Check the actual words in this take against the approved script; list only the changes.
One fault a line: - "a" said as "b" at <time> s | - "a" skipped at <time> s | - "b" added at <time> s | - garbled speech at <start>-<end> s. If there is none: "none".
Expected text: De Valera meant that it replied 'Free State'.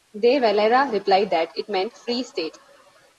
- "meant" said as "replied" at 0.9 s
- "replied" said as "meant" at 1.7 s